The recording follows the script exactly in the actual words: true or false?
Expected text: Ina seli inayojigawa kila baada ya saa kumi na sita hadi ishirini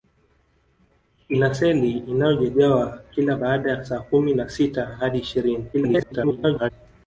false